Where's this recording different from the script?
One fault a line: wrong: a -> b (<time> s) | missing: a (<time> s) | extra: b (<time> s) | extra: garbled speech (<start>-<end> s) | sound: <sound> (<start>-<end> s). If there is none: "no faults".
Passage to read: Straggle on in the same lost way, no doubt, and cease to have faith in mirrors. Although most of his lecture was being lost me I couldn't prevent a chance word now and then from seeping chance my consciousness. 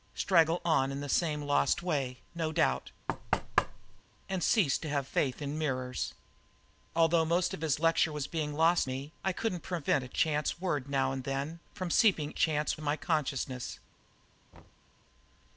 sound: thud (3.1-4.0 s)
sound: thud (14.5-14.9 s)